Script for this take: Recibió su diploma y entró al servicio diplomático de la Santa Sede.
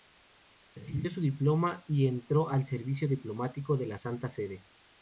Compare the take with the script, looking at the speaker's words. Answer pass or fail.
pass